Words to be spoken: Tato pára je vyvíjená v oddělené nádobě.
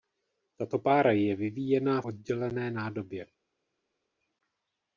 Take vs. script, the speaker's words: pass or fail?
fail